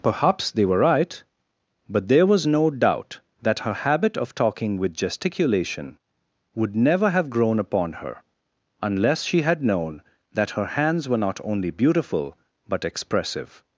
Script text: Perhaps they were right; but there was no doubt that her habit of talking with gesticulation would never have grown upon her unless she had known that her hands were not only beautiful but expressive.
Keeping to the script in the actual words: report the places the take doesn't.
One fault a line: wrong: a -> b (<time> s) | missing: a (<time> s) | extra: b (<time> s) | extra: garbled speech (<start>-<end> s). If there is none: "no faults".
no faults